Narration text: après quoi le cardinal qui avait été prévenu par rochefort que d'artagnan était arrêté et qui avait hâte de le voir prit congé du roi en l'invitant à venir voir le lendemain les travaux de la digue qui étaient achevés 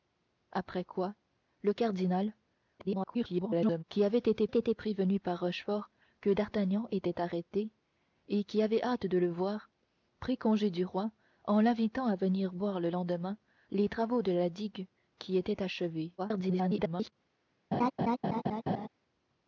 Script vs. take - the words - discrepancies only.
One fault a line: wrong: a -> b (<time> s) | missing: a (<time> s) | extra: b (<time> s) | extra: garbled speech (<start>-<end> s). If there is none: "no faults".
extra: garbled speech (2.8-3.8 s)
extra: été (4.5 s)
extra: garbled speech (16.2-17.1 s)